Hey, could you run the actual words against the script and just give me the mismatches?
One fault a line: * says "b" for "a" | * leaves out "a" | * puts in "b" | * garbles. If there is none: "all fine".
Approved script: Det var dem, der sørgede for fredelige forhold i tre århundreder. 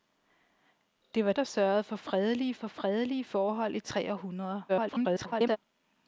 * leaves out "dem"
* puts in "for fredelige"
* garbles